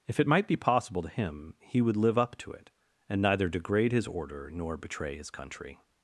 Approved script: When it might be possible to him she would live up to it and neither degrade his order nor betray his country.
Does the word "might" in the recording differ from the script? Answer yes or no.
no